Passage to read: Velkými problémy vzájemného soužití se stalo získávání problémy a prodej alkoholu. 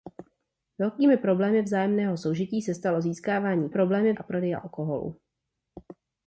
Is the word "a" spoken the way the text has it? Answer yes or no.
yes